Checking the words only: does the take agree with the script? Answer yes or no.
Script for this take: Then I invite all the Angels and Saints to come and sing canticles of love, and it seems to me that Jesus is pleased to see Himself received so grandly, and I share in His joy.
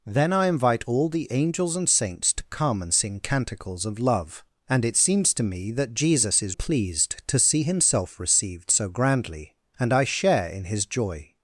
yes